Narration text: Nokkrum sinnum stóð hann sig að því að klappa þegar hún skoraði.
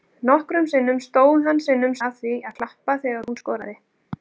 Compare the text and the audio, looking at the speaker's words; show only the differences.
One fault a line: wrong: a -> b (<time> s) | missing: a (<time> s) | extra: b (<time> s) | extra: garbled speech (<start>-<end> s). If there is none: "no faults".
wrong: sig -> sinnum (1.7 s)